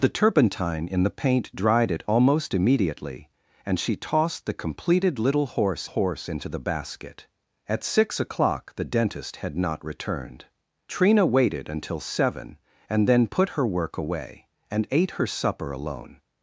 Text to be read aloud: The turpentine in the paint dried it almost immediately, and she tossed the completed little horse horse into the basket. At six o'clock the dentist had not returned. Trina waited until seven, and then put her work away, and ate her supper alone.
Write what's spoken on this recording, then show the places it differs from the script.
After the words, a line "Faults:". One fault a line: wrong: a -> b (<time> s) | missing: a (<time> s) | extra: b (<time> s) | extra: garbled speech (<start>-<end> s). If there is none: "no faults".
The turpentine in the paint dried it almost immediately, and she tossed the completed little horse horse into the basket. At six o'clock the dentist had not returned. Trina waited until seven, and then put her work away, and ate her supper alone.
Faults:
no faults